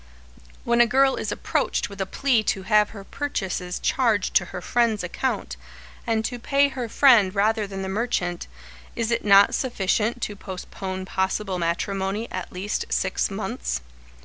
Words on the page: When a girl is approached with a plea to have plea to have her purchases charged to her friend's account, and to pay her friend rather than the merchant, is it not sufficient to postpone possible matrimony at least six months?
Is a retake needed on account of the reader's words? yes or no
yes